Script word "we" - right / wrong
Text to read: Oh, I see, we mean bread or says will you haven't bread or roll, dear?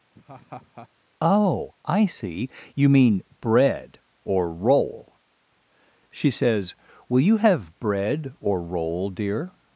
wrong